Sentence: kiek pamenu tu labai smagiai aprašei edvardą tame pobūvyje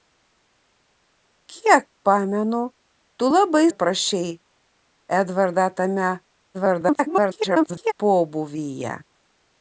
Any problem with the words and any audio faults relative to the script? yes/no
yes